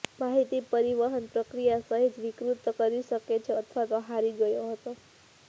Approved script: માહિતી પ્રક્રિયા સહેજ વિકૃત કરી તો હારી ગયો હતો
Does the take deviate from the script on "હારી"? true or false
false